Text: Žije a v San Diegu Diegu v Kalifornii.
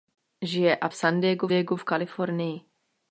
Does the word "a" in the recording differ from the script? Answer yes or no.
no